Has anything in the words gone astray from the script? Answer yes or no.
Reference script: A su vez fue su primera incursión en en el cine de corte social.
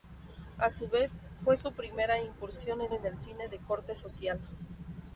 no